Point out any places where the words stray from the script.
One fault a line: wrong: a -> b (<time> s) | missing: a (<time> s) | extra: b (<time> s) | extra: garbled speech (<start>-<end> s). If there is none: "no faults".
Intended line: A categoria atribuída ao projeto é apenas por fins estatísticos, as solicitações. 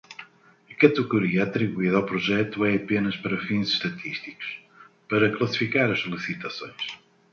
wrong: por -> para (3.1 s)
extra: para classificar (5.1 s)